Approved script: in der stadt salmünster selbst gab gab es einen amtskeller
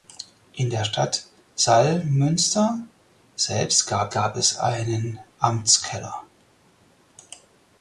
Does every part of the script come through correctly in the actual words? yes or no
yes